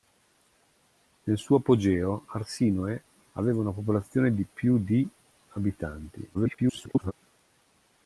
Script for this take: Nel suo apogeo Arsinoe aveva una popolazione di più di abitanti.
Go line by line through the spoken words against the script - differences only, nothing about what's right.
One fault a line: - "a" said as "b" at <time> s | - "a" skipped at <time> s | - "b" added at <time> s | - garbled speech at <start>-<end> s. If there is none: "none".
- garbled speech at 6.3-7.1 s